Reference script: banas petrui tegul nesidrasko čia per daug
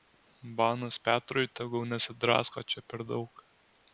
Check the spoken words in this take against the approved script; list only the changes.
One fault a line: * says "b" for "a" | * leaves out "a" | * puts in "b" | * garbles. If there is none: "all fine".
all fine